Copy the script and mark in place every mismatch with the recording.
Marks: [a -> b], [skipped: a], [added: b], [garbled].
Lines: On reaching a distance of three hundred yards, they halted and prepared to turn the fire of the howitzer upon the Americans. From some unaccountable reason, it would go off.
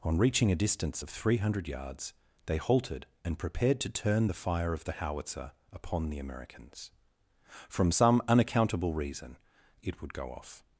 On reaching a distance of three hundred yards, they halted and prepared to turn the fire of the howitzer upon the Americans. From some unaccountable reason, it would go off.